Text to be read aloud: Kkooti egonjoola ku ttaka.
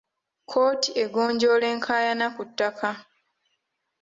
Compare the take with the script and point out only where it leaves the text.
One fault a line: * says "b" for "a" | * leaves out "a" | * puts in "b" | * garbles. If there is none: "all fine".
* puts in "enkaayana"